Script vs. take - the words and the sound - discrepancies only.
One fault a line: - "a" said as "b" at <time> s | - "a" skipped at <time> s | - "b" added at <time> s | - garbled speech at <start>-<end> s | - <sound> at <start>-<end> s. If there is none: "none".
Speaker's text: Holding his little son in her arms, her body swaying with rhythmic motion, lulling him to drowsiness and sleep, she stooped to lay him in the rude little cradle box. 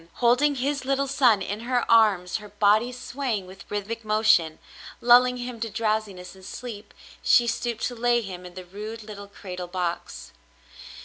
none